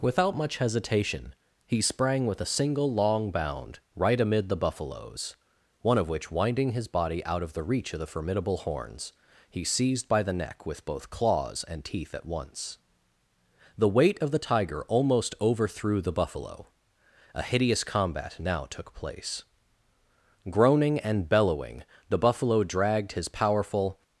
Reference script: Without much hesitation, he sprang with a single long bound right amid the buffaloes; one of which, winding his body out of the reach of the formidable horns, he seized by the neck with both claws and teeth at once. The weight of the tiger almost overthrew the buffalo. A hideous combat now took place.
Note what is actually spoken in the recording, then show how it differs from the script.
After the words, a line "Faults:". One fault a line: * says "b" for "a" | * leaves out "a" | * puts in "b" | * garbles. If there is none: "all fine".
Without much hesitation, he sprang with a single long bound right amid the buffaloes; one of which, winding his body out of the reach of the formidable horns, he seized by the neck with both claws and teeth at once. The weight of the tiger almost overthrew the buffalo. A hideous combat now took place. Groaning and bellowing, the buffalo dragged his powerful
Faults:
* puts in "Groaning and bellowing the buffalo dragged his powerful"